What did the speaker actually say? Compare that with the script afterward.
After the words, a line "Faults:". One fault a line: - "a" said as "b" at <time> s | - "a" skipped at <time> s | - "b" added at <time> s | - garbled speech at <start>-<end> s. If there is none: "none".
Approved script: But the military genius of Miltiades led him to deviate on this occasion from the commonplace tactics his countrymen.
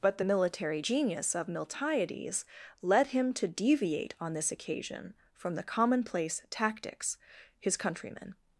But the military genius of Miltiades led him to deviate on this occasion from the commonplace tactics his countrymen.
Faults:
none